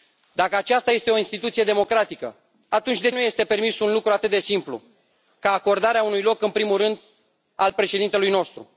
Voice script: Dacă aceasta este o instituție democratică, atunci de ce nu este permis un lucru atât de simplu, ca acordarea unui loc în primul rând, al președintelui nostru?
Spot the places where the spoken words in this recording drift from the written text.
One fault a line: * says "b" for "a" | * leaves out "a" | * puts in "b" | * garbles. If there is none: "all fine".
* leaves out "ce"